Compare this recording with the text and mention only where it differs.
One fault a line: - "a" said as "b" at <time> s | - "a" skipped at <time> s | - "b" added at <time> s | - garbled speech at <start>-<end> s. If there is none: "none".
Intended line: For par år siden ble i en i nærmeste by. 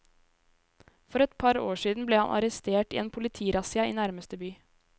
- "et" added at 1.2 s
- "han arrestert" added at 2.2 s
- "politirassia" added at 3.2 s